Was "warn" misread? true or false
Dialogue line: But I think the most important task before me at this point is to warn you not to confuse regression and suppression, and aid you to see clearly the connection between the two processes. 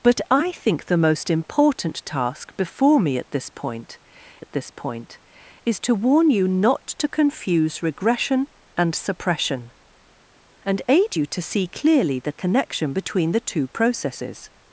false